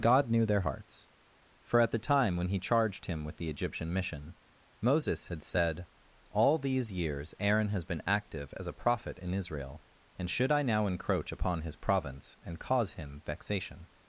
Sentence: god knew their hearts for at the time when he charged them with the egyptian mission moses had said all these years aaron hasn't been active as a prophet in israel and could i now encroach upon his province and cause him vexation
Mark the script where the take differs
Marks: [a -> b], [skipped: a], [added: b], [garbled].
god knew their hearts for at the time when he charged [them -> him] with the egyptian mission moses had said all these years aaron [hasn't -> has] been active as a prophet in israel and [could -> should] i now encroach upon his province and cause him vexation